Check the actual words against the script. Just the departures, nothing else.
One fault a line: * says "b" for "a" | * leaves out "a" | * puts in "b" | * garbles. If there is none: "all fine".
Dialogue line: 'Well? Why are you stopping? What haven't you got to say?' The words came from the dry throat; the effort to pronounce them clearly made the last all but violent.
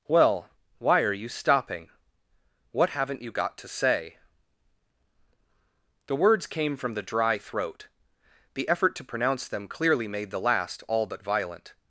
all fine